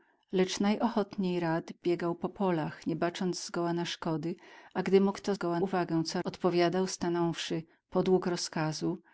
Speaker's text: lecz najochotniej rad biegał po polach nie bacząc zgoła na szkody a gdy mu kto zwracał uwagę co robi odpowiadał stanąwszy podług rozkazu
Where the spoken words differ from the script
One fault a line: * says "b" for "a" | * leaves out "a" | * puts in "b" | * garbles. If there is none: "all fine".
* says "zgoła" for "zwracał"
* leaves out "robi"